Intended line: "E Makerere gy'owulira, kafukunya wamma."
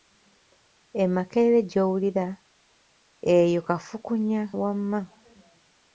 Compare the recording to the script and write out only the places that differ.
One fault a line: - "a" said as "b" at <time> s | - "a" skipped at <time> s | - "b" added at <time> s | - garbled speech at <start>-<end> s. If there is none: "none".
- "eyo" added at 3.4 s